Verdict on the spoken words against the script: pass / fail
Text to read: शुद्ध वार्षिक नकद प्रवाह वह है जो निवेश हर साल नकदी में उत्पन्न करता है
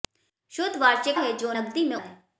fail